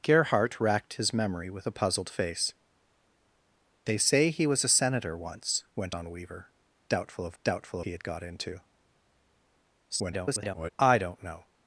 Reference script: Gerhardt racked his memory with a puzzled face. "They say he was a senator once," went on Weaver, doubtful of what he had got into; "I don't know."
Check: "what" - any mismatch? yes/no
yes